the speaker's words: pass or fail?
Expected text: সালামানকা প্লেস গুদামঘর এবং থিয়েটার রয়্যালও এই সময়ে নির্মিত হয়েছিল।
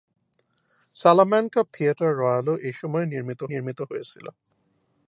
fail